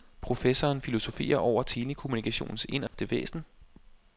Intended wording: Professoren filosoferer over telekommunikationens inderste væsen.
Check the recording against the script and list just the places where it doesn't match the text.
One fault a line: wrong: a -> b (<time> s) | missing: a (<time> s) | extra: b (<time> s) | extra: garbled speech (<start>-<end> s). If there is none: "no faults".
no faults